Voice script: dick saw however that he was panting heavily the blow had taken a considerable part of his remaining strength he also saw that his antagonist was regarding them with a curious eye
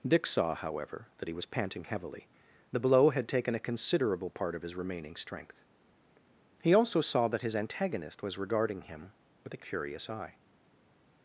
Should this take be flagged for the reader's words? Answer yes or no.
yes